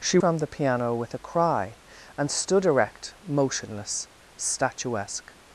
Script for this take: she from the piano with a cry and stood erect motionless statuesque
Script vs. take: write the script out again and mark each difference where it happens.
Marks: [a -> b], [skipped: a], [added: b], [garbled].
she from the piano with a cry and stood erect motionless statuesque